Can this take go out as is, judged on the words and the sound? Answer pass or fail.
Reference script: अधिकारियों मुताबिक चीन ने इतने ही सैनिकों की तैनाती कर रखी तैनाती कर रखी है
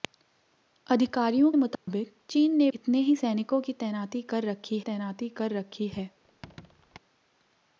fail